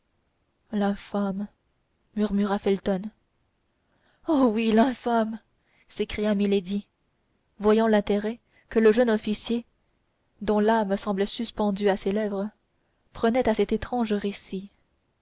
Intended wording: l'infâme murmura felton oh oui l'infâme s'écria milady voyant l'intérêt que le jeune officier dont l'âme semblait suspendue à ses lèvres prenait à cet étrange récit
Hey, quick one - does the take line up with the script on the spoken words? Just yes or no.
yes